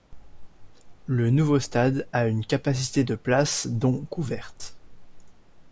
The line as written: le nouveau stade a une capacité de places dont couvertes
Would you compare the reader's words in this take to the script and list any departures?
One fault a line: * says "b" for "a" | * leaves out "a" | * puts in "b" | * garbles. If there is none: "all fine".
all fine